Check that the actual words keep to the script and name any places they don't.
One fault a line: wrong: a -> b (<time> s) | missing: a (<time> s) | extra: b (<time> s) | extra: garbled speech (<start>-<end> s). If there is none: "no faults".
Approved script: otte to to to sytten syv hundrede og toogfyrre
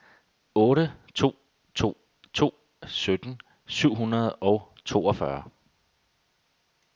no faults